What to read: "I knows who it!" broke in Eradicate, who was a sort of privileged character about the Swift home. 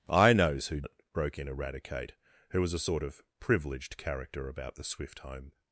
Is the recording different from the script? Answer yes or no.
no